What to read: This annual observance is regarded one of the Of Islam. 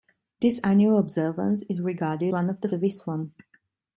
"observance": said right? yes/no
yes